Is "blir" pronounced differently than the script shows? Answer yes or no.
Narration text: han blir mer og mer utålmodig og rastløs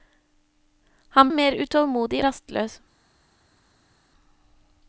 yes